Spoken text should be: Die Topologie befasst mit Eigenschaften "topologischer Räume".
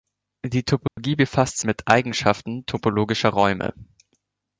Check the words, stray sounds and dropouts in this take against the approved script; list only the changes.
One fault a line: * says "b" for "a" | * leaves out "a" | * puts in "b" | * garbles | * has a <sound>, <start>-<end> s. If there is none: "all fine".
* has a dropout, 0.9-1.0 s